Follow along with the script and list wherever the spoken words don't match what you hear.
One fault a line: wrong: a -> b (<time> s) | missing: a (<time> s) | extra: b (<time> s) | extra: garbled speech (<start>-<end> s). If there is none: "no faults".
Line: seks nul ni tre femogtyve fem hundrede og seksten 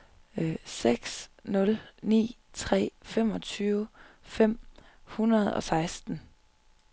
no faults